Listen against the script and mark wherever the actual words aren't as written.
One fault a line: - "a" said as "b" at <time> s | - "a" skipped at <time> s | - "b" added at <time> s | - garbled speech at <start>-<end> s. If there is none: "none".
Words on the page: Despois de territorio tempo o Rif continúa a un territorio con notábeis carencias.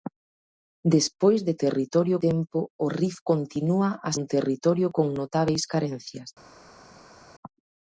none